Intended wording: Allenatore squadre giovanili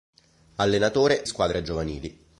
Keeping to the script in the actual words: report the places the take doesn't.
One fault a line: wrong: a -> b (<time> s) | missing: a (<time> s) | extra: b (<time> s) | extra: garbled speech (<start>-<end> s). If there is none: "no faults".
no faults